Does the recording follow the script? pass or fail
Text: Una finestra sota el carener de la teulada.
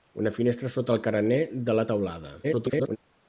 fail